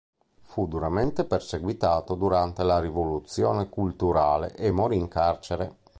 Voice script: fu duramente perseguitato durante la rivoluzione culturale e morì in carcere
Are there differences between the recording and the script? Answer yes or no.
no